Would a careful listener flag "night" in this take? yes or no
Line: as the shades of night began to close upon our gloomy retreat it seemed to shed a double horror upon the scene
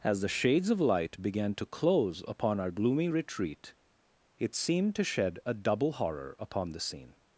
yes